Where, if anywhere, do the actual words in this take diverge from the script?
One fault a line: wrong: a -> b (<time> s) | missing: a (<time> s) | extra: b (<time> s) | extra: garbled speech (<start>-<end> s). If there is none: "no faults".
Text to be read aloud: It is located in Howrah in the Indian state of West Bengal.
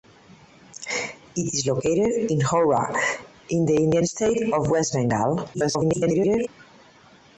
extra: garbled speech (5.5-6.5 s)